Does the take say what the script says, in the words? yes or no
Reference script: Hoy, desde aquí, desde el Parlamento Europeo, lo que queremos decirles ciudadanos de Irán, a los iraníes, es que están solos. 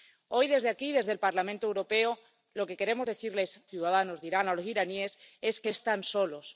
yes